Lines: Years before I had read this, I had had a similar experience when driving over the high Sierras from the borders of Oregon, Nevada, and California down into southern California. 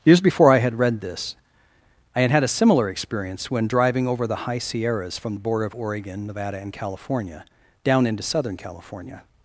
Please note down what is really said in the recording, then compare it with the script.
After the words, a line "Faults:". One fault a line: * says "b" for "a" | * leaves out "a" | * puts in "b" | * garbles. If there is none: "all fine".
Years before I had read this, I had had a similar experience when driving over the high Sierras from the border of Oregon, Nevada, and California down into southern California.
Faults:
* says "border" for "borders"